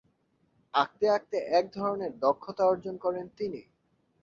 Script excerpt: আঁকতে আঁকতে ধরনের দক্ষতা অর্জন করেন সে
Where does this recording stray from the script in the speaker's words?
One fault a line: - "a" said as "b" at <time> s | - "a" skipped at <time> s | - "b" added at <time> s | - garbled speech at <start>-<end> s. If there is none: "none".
- "এক" added at 1.5 s
- "সে" said as "তিনি" at 3.4 s